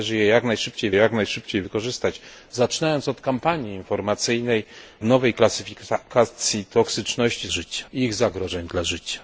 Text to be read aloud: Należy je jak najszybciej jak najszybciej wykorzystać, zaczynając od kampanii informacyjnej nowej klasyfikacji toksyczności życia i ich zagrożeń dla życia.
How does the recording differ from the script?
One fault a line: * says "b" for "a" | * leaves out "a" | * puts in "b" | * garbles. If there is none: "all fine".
all fine